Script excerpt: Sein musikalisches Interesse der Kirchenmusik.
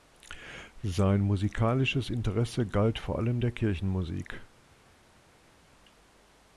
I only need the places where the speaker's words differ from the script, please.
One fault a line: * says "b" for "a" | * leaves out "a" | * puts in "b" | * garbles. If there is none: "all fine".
* puts in "galt vor allem"